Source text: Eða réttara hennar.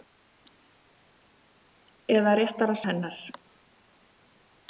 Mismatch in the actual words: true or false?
false